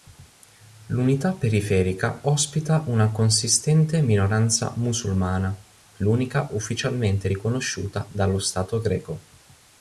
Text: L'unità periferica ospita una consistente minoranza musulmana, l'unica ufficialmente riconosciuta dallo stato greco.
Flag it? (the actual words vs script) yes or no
no